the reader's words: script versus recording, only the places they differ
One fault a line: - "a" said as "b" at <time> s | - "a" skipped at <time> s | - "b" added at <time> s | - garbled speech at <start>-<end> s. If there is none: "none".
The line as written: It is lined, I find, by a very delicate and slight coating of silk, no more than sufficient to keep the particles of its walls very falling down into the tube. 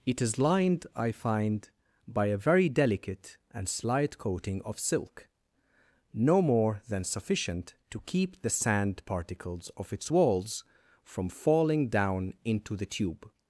- "sand" added at 8.5 s
- "very" said as "from" at 11.0 s